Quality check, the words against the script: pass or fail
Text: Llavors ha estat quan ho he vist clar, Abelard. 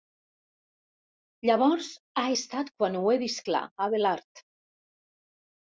pass